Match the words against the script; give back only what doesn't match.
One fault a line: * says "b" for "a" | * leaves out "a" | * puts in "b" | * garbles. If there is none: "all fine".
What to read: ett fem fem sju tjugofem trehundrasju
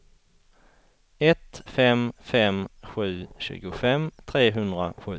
all fine